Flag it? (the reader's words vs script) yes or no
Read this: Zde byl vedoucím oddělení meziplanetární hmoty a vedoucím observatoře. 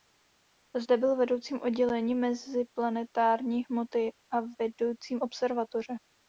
no